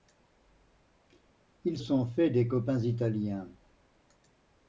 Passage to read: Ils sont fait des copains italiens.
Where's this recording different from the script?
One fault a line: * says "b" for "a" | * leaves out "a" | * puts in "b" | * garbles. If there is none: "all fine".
all fine